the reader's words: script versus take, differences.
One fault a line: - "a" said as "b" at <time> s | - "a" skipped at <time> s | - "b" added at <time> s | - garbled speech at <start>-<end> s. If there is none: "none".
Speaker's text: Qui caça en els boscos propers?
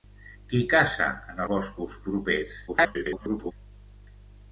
- "els" skipped at 1.4 s
- garbled speech at 2.7-3.5 s